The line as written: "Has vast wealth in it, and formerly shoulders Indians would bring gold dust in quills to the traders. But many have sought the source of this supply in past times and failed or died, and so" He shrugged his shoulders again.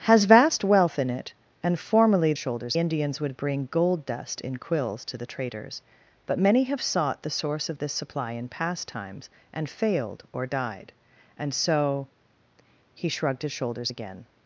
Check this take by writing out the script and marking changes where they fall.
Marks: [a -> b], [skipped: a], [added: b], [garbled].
"Has vast wealth in it, and formerly shoulders Indians would bring gold dust in quills to the traders. But many have sought the source of this supply in past times and failed or died, and so" He shrugged his shoulders again.